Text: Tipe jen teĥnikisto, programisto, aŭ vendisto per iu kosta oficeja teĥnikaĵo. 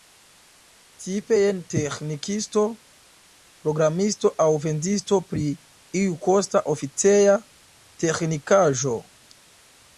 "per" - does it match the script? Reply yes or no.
no